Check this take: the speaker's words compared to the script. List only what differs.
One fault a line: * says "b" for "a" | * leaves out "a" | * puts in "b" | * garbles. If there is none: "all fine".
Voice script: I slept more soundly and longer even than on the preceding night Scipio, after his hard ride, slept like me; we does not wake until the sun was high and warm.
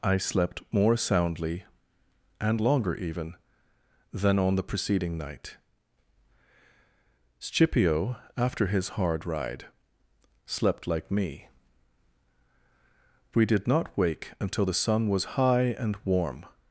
* says "did" for "does"